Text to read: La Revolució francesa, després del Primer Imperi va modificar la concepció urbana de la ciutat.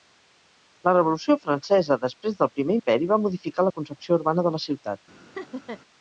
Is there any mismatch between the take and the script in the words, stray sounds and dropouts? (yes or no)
yes